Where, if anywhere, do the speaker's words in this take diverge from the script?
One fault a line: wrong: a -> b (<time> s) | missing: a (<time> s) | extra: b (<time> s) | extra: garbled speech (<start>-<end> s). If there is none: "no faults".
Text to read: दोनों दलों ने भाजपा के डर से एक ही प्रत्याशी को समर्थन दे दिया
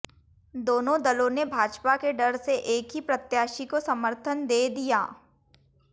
no faults